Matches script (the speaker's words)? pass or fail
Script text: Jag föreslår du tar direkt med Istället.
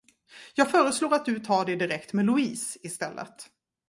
fail